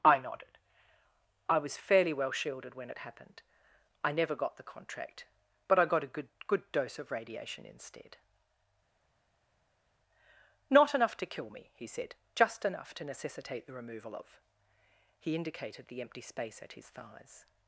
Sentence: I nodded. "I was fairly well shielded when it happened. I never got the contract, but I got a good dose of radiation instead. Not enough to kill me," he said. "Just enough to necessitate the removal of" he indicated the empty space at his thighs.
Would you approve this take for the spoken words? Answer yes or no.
no